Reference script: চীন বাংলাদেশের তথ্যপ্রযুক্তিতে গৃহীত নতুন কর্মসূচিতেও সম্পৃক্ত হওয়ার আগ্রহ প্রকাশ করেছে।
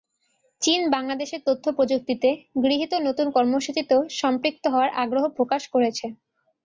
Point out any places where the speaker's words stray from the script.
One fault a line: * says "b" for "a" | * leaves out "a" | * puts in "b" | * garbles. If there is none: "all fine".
all fine